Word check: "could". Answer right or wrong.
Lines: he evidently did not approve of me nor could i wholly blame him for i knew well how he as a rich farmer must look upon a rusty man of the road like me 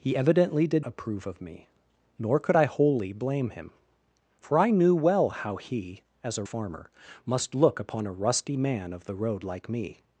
right